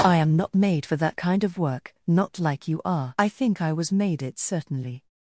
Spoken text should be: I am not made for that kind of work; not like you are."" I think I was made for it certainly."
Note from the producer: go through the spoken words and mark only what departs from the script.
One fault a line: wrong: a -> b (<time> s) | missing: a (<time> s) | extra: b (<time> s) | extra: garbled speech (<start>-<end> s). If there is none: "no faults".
missing: for (4.2 s)